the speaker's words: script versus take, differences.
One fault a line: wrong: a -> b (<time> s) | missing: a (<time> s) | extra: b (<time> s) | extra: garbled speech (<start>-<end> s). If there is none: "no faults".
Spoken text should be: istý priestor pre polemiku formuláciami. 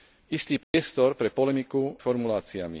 no faults